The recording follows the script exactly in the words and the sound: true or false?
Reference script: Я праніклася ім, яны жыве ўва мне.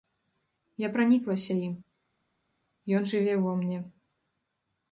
false